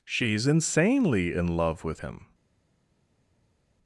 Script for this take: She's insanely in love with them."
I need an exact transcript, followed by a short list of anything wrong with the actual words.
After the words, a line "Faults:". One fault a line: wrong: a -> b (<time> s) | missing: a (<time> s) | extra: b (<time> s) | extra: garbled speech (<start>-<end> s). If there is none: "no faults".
She's insanely in love with him."
Faults:
wrong: them -> him (2.0 s)